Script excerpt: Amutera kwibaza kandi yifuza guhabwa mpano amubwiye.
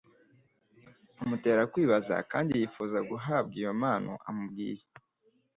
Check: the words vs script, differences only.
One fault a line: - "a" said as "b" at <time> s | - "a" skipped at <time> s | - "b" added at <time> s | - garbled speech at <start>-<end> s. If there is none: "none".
- "iyo" added at 3.6 s